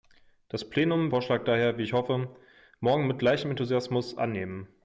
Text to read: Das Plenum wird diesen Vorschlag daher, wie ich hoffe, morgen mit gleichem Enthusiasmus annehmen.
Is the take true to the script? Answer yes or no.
no